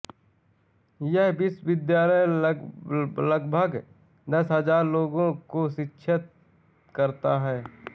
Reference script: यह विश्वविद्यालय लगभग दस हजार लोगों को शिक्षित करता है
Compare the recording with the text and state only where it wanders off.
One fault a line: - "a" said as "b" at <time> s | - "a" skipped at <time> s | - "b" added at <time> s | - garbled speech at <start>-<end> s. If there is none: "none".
none